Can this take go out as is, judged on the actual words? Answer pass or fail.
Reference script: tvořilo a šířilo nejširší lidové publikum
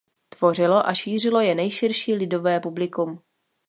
fail